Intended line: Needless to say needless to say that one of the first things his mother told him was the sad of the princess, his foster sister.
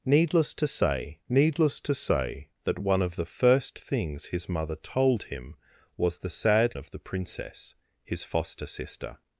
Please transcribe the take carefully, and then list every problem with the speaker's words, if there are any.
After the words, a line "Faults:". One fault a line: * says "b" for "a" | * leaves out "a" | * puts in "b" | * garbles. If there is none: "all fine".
Needless to say needless to say that one of the first things his mother told him was the sad of the princess, his foster sister.
Faults:
all fine